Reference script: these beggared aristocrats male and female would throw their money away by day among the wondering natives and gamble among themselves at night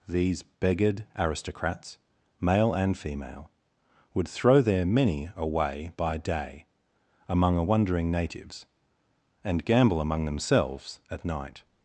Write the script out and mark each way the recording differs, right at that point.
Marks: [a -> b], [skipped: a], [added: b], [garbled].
these beggared aristocrats male and female would throw their [money -> many] away by day among [the -> a] wondering natives and gamble among themselves at night